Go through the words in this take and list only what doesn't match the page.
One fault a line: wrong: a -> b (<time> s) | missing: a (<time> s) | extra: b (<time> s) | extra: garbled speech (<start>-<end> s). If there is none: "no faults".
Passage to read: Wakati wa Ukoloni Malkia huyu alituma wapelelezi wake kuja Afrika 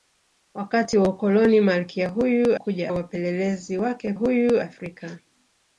wrong: alituma -> kuja (2.5 s)
wrong: kuja -> huyu (4.1 s)